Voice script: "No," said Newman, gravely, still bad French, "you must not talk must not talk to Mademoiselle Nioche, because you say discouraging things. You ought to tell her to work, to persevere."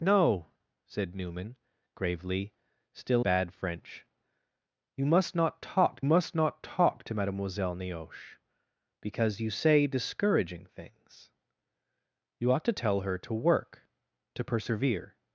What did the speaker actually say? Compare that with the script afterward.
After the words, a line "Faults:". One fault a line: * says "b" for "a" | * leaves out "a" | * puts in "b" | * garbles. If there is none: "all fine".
"No," said Newman, gravely, still bad French, "you must not talk must not talk to Mademoiselle Nioche, because you say discouraging things. You ought to tell her to work, to persevere."
Faults:
all fine